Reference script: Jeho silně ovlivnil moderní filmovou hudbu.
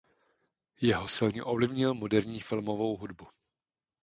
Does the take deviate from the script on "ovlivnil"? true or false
false